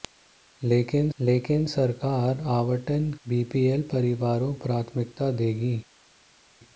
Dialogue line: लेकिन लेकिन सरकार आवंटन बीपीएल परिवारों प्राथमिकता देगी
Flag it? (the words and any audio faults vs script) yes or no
no